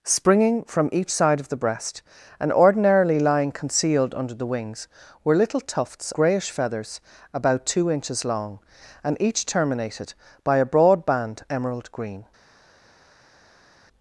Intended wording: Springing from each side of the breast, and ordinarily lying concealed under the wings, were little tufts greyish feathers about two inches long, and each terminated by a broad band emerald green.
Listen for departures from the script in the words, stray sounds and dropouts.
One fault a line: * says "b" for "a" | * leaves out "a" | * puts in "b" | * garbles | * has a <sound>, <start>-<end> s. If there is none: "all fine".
all fine